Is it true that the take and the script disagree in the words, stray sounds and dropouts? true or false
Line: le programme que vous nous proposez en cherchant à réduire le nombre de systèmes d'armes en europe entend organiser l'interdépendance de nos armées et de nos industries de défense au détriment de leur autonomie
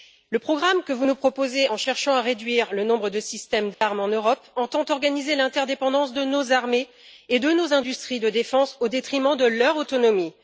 true